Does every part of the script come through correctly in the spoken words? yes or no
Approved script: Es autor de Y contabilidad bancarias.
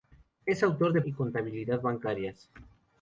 yes